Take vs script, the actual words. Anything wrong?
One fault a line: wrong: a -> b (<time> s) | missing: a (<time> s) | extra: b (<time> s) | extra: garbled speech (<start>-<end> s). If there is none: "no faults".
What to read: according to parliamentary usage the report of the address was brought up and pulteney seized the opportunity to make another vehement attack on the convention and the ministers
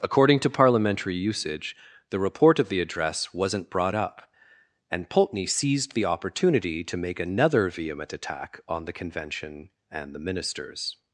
wrong: was -> wasn't (3.3 s)